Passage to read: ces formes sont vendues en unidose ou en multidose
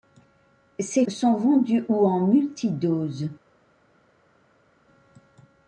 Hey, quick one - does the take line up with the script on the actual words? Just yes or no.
no